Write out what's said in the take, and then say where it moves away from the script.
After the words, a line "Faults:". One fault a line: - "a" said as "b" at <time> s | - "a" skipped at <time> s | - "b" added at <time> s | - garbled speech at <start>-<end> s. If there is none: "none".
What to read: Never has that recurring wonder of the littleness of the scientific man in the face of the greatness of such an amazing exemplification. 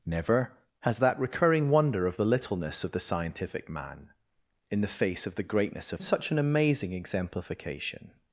Never has that recurring wonder of the littleness of the scientific man in the face of the greatness of such an amazing exemplification.
Faults:
none